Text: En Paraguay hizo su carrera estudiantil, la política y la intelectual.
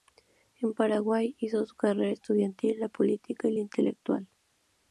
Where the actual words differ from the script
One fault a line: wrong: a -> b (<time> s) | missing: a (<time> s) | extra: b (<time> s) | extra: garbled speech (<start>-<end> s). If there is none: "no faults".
no faults